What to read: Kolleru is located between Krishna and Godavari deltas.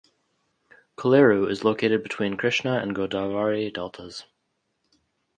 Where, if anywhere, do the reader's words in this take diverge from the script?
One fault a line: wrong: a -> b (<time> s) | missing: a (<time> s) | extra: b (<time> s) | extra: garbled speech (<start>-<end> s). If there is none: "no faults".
no faults